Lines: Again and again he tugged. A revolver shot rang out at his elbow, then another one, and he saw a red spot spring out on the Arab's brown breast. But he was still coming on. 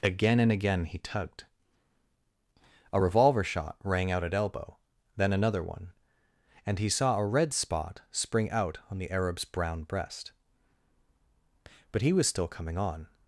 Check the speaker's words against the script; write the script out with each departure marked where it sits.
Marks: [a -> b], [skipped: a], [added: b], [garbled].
Again and again he tugged. A revolver shot rang out at [skipped: his] elbow, then another one, and he saw a red spot spring out on the Arab's brown breast. But he was still coming on.